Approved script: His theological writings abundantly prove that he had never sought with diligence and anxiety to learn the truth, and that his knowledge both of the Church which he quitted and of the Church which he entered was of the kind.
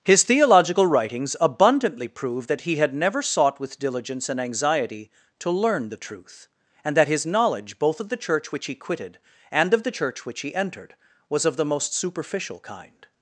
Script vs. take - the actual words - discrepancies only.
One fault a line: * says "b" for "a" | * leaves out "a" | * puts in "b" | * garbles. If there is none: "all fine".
* puts in "most superficial"